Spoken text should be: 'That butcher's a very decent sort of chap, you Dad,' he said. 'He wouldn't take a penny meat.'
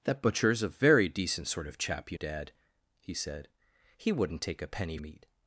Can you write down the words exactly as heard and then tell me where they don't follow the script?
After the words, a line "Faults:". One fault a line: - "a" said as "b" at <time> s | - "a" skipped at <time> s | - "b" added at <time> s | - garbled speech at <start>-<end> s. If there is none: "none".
'That butcher's a very decent sort of chap, you Dad,' he said. 'He wouldn't take a penny meat.'
Faults:
none